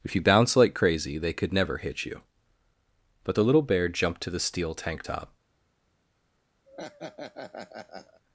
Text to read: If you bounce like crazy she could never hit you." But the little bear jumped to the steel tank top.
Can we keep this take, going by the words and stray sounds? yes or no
no